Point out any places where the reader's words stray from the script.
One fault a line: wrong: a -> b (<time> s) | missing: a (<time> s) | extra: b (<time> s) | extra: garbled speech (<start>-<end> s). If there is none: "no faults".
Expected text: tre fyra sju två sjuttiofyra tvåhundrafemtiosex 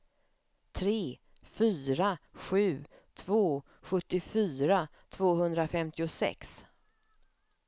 no faults